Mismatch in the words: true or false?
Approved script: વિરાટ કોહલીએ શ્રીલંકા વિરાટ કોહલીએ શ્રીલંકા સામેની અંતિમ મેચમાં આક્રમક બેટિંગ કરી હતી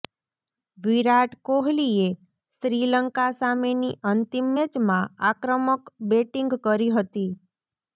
true